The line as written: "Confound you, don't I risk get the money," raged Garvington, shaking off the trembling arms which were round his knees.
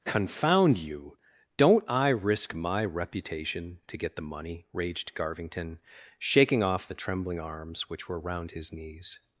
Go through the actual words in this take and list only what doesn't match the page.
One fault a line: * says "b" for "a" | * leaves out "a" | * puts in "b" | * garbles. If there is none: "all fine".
* puts in "my reputation to"